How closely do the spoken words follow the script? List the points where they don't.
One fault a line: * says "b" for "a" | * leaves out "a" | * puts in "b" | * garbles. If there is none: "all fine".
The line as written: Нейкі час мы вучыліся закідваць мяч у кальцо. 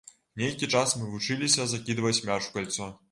all fine